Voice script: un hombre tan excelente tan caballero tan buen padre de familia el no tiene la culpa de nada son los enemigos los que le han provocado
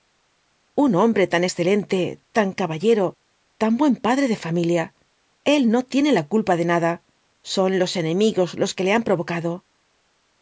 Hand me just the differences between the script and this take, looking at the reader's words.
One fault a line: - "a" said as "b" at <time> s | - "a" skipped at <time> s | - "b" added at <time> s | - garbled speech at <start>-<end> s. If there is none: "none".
none